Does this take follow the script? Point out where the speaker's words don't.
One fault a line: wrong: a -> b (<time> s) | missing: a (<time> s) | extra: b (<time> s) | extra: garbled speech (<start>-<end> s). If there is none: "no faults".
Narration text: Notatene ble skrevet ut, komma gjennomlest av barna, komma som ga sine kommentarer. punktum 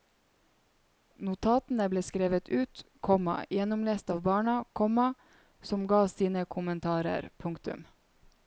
no faults